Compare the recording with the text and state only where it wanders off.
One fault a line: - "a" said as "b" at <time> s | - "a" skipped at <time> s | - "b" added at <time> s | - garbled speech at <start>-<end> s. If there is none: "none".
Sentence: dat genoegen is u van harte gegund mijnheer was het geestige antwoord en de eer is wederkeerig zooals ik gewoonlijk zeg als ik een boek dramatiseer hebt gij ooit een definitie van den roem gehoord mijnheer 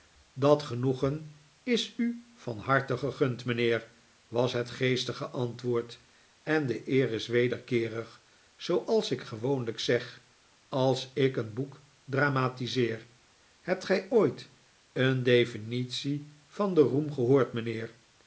none